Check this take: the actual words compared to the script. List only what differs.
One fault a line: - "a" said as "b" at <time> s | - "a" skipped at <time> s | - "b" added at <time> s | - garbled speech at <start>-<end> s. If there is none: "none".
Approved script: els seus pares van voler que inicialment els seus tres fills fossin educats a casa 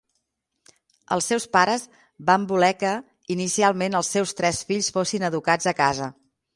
none